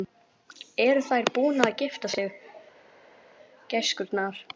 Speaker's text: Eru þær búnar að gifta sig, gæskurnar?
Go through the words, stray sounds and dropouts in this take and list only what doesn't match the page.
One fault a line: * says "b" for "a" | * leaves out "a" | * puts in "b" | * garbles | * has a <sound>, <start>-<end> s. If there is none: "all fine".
all fine